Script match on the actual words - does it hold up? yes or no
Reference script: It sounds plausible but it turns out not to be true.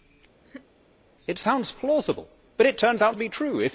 no